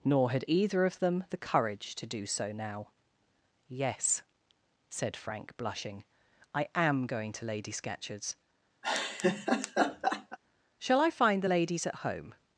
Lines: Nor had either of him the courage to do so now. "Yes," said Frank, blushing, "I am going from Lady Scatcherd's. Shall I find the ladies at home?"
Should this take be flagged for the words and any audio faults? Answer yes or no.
yes